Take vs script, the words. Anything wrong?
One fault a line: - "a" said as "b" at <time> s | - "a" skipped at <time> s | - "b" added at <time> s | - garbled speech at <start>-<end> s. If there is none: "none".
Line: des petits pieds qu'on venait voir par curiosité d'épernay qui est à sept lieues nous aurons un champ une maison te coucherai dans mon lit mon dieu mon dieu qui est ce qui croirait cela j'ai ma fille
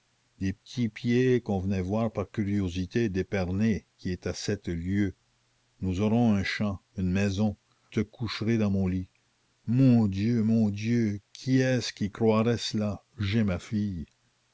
none